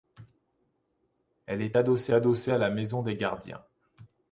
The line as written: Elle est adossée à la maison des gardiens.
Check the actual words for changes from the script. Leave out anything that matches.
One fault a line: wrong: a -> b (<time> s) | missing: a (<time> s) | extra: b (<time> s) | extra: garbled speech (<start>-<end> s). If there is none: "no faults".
extra: adossée (2.1 s)